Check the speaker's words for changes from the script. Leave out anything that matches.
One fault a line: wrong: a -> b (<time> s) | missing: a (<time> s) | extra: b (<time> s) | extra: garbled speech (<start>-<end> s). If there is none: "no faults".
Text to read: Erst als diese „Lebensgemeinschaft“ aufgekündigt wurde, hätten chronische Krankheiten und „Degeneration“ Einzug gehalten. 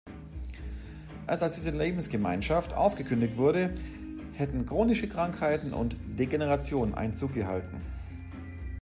no faults